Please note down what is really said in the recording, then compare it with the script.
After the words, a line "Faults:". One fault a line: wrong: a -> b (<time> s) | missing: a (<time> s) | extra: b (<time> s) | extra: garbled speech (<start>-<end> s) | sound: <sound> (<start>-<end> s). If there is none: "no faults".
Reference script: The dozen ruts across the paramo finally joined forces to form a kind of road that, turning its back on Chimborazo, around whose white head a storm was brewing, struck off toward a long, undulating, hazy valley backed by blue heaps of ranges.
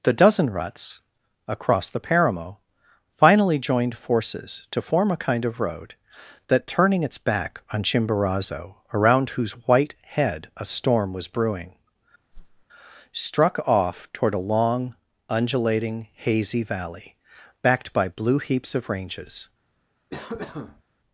The dozen ruts across the paramo finally joined forces to form a kind of road that, turning its back on Chimborazo, around whose white head a storm was brewing, struck off toward a long, undulating, hazy valley backed by blue heaps of ranges.
Faults:
sound: whoosh (12.3-12.7 s)
sound: cough (20.1-20.8 s)